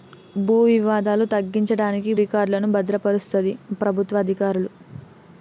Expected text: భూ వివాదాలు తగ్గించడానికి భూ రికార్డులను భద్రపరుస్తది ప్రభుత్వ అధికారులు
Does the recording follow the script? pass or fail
fail